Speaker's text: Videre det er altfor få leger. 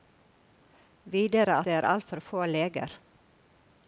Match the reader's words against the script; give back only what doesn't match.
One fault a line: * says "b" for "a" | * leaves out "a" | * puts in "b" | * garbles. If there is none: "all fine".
all fine